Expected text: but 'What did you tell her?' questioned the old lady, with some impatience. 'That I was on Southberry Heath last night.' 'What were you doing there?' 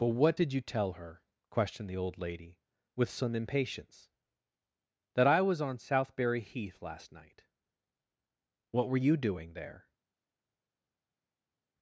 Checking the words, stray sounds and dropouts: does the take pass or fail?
pass